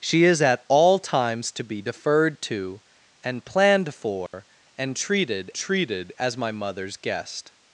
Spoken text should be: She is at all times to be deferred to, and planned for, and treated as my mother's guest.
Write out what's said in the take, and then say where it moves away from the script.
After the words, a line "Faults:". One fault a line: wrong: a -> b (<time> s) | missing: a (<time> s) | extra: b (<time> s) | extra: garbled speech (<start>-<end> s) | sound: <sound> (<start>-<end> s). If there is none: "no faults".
She is at all times to be deferred to, and planned for, and treated treated as my mother's guest.
Faults:
sound: dropout (4.3-4.3 s)
extra: treated (5.5 s)